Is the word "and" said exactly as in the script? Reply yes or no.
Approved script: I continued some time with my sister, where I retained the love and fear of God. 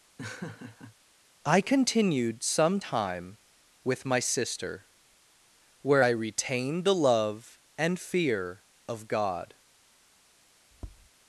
yes